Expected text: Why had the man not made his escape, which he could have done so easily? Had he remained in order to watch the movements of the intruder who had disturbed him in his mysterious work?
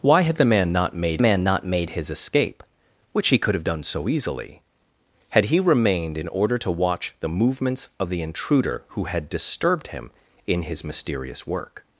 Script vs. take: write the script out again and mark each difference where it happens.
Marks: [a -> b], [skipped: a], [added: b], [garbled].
Why had the man not made [added: man not made] his escape, which he could have done so easily? Had he remained in order to watch the movements of the intruder who had disturbed him in his mysterious work?